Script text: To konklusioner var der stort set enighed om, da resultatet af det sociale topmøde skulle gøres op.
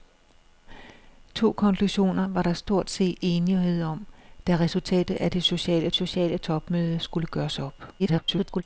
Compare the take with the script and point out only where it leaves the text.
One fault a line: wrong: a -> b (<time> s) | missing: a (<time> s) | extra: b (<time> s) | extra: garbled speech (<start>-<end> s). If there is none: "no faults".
extra: sociale (5.9 s)
extra: garbled speech (8.0-8.6 s)